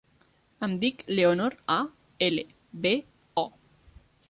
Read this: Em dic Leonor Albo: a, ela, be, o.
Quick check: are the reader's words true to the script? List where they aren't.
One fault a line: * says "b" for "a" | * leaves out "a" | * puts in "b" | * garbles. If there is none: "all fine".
* leaves out "Albo"